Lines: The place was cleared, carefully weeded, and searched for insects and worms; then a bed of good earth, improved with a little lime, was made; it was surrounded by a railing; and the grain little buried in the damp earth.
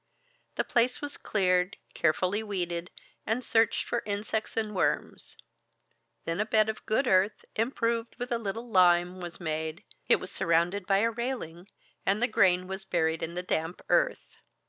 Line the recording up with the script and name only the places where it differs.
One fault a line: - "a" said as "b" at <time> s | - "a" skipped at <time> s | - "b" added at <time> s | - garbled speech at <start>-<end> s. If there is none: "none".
- "little" said as "was" at 12.7 s